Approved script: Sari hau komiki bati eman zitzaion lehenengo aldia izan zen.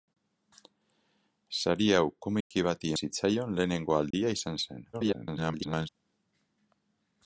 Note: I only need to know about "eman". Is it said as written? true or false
false